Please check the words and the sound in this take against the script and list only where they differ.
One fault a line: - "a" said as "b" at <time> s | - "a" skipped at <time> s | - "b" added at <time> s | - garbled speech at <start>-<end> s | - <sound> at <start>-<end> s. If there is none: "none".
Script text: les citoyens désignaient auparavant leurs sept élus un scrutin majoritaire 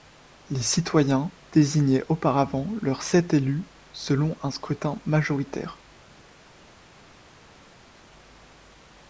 - "selon" added at 3.9 s